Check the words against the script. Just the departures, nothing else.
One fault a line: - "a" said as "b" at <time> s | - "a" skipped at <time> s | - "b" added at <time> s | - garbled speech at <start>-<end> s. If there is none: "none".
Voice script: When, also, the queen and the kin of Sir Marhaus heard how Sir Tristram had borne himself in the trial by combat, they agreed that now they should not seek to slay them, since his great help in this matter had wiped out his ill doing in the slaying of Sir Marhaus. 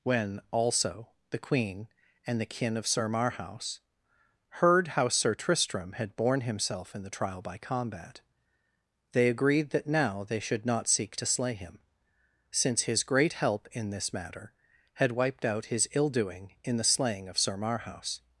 - "them" said as "him" at 11.5 s